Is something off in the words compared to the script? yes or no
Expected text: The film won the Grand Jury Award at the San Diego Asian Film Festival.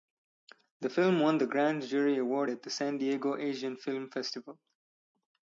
no